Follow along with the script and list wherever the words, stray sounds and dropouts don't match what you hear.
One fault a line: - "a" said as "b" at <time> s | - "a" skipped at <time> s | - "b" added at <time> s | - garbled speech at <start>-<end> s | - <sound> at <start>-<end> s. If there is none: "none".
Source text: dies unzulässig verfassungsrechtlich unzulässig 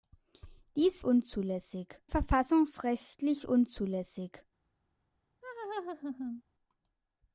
- laugh at 5.4-6.4 s